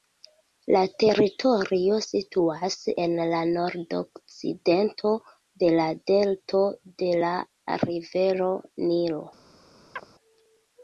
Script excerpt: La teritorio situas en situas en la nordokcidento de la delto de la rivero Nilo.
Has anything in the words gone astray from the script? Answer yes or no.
yes